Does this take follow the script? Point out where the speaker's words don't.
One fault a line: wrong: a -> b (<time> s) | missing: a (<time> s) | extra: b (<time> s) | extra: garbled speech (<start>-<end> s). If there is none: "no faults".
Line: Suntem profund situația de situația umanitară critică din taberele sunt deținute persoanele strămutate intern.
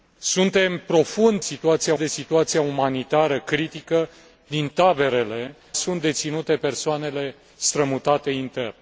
no faults